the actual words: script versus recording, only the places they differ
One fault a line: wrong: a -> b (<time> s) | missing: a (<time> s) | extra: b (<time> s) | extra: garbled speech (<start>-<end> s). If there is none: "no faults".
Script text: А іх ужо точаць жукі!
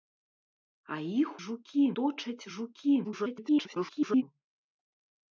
wrong: ужо -> жукі (1.4 s)
extra: garbled speech (3.0-4.2 s)